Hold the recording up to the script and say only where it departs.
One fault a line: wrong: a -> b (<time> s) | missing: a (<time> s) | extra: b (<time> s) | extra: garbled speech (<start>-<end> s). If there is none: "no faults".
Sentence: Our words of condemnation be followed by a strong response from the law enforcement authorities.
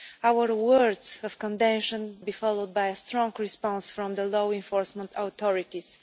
no faults